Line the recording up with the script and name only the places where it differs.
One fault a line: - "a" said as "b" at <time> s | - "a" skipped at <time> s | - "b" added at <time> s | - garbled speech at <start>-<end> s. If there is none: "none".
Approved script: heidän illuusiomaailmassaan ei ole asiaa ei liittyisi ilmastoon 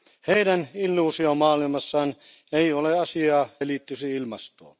none